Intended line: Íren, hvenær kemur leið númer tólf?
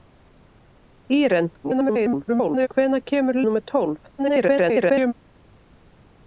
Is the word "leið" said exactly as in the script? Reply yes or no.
no